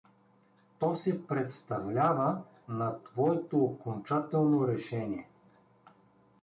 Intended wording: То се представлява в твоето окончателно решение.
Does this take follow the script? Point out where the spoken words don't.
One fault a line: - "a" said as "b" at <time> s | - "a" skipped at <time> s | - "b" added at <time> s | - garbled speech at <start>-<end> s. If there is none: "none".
- "в" said as "на" at 2.7 s